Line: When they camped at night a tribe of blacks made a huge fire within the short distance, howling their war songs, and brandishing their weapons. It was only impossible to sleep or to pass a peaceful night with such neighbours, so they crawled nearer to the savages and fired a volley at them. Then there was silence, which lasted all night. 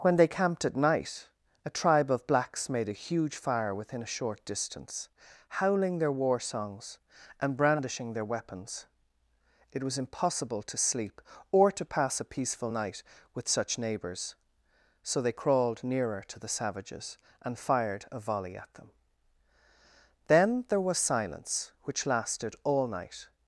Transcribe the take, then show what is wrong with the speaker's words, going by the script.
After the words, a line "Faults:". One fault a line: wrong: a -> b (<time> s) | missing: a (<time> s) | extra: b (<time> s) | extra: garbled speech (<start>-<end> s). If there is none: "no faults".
When they camped at night a tribe of blacks made a huge fire within a short distance, howling their war songs, and brandishing their weapons. It was impossible to sleep or to pass a peaceful night with such neighbours, so they crawled nearer to the savages and fired a volley at them. Then there was silence, which lasted all night.
Faults:
wrong: the -> a (4.0 s)
missing: only (10.0 s)